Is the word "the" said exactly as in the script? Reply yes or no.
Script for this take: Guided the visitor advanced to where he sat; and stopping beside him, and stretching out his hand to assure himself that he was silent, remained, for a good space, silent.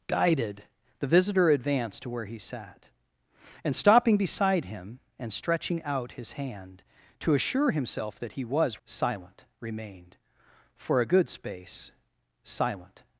yes